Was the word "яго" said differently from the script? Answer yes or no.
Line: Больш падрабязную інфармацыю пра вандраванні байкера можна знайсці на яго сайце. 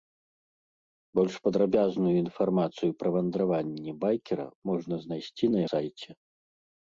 yes